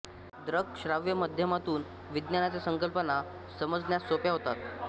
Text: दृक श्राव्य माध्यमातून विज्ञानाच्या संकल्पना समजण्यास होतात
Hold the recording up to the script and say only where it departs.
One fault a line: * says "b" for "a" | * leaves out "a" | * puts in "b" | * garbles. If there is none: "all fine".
* puts in "सोप्या"